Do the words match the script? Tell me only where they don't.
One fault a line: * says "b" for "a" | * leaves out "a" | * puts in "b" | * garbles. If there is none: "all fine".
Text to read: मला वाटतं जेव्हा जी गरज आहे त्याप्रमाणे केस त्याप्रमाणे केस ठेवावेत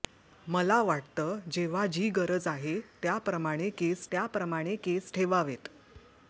all fine